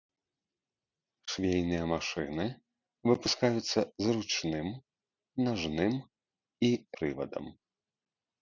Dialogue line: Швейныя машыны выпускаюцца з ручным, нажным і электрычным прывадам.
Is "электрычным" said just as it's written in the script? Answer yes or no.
no